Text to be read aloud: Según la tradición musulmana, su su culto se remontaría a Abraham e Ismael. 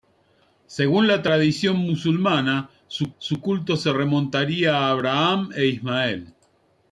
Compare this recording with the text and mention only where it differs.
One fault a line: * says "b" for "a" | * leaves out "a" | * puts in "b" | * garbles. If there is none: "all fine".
all fine